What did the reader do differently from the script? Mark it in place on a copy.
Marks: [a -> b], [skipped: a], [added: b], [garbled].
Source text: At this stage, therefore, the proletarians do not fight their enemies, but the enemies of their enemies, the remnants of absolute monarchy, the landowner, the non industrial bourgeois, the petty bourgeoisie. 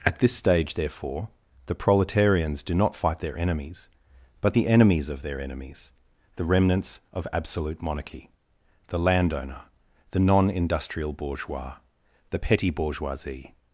At this stage, therefore, the proletarians do not fight their enemies, but the enemies of their enemies, the remnants of absolute monarchy, the landowner, the non industrial bourgeois, the petty bourgeoisie.